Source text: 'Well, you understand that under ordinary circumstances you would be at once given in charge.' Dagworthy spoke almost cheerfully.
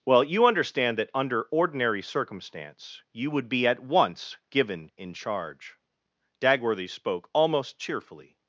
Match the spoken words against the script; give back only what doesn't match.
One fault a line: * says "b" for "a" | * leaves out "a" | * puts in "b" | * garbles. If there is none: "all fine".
* says "circumstance" for "circumstances"